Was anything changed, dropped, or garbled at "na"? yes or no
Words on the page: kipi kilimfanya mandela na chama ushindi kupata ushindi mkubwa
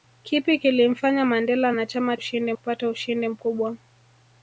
no